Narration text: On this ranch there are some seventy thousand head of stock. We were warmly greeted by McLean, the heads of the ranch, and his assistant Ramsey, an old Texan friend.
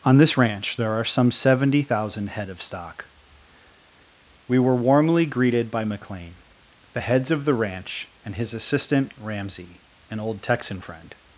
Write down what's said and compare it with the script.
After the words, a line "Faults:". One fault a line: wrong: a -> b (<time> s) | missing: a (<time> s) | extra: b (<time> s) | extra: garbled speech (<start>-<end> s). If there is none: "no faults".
On this ranch there are some seventy thousand head of stock. We were warmly greeted by McLean, the heads of the ranch, and his assistant Ramsey, an old Texan friend.
Faults:
no faults